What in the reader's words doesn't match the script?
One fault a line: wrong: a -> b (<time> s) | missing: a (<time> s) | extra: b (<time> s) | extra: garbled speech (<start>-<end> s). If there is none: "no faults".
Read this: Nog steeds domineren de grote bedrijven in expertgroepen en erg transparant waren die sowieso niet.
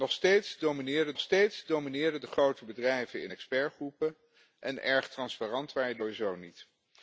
extra: nog steeds domineren (1.1 s)